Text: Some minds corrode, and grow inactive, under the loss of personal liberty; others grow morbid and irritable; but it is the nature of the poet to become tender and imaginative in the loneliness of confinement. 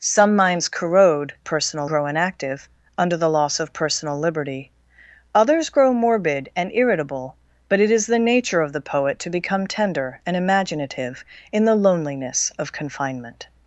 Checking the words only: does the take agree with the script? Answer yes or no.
no